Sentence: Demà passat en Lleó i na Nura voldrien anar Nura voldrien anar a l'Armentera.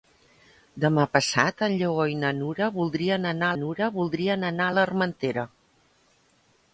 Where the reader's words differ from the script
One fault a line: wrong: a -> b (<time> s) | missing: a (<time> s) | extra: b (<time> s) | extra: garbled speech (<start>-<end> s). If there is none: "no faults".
no faults